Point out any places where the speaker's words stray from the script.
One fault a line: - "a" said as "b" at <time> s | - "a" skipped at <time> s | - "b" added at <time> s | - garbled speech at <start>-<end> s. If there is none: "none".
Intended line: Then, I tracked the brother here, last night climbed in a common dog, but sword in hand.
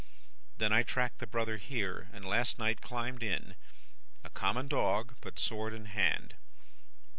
- "and" added at 2.1 s